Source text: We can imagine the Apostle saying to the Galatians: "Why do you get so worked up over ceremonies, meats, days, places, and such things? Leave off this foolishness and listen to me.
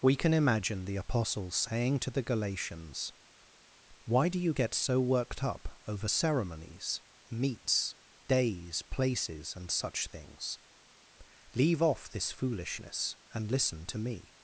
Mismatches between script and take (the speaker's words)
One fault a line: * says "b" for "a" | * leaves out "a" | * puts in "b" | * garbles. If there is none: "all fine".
all fine